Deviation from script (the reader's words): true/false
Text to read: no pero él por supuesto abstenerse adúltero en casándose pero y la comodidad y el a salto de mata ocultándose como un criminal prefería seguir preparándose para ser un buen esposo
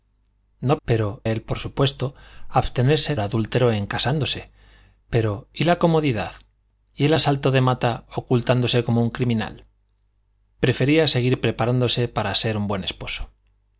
false